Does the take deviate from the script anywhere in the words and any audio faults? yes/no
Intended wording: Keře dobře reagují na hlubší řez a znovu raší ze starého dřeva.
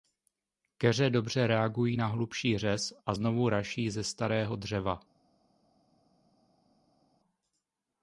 no